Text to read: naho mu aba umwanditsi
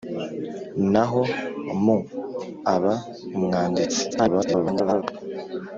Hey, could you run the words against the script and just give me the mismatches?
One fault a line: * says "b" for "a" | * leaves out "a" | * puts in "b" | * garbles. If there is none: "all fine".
* garbles